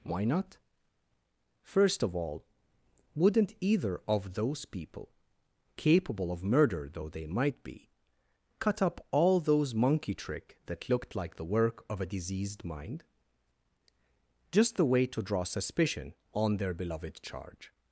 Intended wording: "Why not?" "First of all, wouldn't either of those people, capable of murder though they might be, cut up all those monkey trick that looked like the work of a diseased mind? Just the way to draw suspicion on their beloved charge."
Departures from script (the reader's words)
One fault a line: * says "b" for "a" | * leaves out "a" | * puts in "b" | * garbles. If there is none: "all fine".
all fine